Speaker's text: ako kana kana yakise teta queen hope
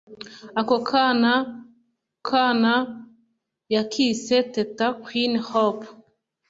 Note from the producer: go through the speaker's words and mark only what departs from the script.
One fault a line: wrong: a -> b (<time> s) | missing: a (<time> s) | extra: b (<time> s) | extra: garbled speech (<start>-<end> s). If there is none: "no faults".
no faults